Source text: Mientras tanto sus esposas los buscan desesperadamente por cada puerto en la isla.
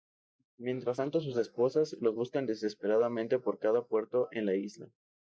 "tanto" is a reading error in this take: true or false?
false